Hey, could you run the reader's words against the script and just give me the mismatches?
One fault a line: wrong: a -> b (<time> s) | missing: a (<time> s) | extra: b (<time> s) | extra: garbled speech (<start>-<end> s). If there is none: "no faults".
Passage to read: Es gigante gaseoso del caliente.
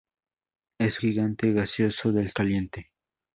no faults